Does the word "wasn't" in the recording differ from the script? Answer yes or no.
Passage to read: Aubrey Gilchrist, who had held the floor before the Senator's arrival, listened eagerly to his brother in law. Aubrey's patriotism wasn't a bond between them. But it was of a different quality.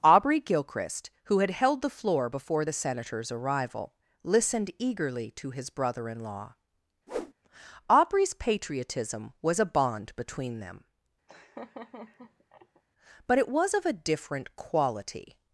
yes